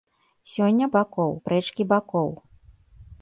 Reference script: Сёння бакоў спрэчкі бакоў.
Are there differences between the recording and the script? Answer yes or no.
no